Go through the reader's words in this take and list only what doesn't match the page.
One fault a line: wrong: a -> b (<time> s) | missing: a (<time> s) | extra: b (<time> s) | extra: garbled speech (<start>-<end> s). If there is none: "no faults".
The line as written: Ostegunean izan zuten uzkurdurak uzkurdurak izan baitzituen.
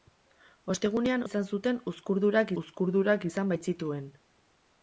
no faults